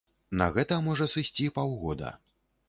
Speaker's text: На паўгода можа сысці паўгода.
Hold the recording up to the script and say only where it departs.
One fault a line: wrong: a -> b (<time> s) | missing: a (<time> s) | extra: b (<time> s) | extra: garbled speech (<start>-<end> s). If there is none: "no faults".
wrong: паўгода -> гэта (0.6 s)